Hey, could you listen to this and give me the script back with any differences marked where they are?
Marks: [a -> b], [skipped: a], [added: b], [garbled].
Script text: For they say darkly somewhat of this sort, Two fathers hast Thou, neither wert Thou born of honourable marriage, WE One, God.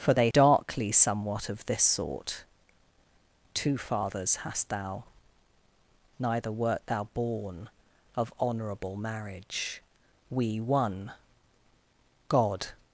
For they [skipped: say] darkly somewhat of this sort, Two fathers hast Thou, neither wert Thou born of honourable marriage, WE One, God.